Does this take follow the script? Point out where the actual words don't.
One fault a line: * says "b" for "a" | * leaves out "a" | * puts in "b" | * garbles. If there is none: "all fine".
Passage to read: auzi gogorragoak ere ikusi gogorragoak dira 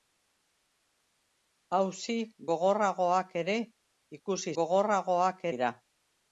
all fine